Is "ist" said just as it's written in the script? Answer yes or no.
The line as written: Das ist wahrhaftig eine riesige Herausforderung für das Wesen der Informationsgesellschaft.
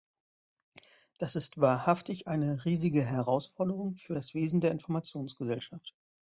yes